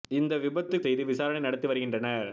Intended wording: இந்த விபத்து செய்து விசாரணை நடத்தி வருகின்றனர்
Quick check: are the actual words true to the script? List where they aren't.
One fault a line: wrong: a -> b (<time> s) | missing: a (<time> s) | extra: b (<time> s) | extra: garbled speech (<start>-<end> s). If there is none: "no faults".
no faults